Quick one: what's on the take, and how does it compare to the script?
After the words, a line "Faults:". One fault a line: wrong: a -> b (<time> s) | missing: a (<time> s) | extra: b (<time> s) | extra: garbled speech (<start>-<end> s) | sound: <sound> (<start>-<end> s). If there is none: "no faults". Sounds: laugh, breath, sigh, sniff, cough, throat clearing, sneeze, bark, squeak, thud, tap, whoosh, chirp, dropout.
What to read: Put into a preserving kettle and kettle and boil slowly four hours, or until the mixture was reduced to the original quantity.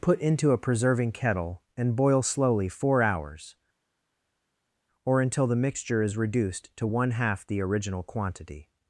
Put into a preserving kettle and boil slowly four hours, or until the mixture is reduced to one half the original quantity.
Faults:
missing: kettle and (1.9 s)
wrong: was -> is (6.0 s)
extra: one half (6.8 s)